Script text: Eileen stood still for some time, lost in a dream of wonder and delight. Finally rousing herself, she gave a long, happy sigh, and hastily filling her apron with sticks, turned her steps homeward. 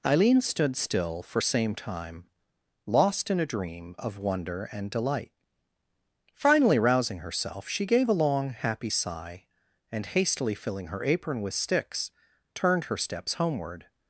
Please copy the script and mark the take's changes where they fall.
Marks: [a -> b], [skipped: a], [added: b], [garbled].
Eileen stood still for [some -> same] time, lost in a dream of wonder and delight. Finally rousing herself, she gave a long, happy sigh, and hastily filling her apron with sticks, turned her steps homeward.